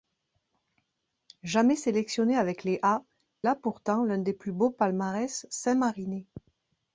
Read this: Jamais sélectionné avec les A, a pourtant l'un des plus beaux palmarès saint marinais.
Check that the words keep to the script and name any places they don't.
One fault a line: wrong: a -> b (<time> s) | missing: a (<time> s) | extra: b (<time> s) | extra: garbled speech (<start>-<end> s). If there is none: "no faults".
no faults